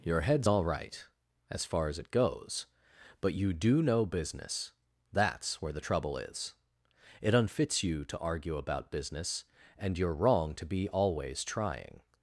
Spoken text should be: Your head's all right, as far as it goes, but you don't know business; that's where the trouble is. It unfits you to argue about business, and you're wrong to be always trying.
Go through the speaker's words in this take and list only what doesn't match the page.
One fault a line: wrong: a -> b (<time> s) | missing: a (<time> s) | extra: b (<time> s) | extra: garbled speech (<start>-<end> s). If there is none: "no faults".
wrong: don't -> do (3.5 s)